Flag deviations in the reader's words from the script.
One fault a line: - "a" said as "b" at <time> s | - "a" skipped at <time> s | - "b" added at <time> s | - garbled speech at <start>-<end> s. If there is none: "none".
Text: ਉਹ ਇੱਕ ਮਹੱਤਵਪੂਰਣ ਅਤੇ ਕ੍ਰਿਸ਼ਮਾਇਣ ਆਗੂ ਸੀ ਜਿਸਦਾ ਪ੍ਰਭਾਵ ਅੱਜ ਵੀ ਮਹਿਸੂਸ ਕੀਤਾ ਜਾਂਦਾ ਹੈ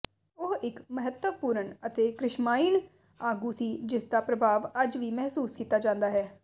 none